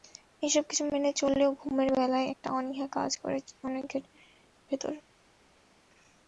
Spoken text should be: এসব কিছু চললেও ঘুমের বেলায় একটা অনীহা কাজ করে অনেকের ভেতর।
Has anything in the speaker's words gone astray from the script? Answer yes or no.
yes